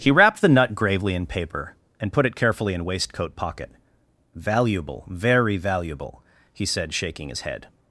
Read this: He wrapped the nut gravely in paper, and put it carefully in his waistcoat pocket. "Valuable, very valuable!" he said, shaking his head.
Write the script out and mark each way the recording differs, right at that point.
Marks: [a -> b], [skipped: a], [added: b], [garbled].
He wrapped the nut gravely in paper, and put it carefully in [skipped: his] waistcoat pocket. "Valuable, very valuable!" he said, shaking his head.